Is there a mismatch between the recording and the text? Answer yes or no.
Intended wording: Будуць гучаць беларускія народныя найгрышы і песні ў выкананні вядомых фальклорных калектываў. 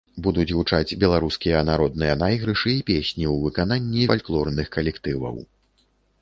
yes